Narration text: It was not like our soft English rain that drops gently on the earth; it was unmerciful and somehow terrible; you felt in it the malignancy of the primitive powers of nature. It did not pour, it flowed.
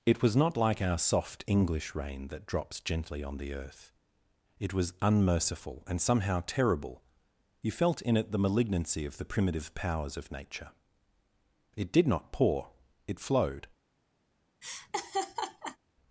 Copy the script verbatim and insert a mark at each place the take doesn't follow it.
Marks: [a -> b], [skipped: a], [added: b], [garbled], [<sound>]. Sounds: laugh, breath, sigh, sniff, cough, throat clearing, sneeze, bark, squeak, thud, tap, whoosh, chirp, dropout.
It was not like our soft English rain that drops gently on the earth; it was unmerciful and somehow terrible; you felt in it the malignancy of the primitive powers of nature. It did not pour, it flowed. [laugh]